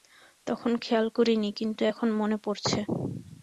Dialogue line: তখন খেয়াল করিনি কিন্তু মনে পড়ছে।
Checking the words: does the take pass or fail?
fail